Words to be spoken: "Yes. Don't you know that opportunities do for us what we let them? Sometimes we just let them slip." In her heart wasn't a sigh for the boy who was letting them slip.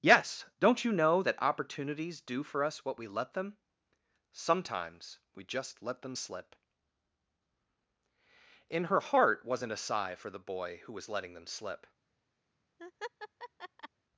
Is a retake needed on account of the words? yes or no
no